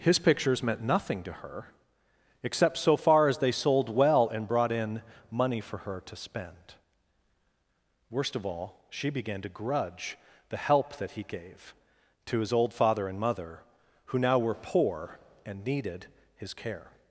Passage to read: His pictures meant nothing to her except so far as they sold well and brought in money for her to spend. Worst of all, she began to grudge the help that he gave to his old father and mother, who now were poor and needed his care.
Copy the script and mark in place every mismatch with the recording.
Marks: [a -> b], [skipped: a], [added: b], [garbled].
His pictures meant nothing to her except so far as they sold well and brought in money for her to spend. Worst of all, she began to grudge the help that he gave to his old father and mother, who now were poor and needed his care.